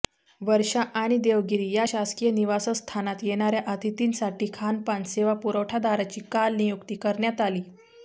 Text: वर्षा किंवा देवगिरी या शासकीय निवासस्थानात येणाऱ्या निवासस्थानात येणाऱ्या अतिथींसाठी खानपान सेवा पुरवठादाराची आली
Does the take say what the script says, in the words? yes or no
no